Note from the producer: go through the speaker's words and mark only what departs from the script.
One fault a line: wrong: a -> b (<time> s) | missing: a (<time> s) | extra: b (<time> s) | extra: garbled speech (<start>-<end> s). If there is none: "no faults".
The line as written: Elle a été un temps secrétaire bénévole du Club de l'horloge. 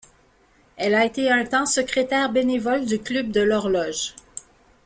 no faults